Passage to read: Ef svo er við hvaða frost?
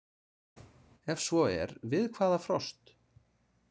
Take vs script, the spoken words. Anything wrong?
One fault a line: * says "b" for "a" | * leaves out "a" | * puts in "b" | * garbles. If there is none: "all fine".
all fine